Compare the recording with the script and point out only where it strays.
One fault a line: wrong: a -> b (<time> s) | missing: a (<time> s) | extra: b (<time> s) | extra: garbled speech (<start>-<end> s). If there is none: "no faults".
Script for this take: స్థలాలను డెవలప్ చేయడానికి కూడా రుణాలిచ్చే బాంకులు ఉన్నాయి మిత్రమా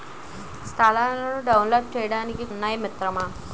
missing: కూడా రుణాలిచ్చే బాంకులు (2.5 s)